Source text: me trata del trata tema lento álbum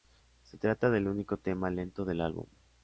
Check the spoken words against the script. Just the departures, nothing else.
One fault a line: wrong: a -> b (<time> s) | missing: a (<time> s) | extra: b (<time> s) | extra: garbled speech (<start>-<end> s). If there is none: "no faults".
wrong: me -> se (0.4 s)
wrong: trata -> único (1.1 s)
extra: del (2.0 s)